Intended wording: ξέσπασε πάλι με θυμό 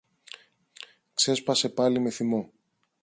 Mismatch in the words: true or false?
false